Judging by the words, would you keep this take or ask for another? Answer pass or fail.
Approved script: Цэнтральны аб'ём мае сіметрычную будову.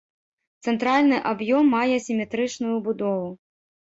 pass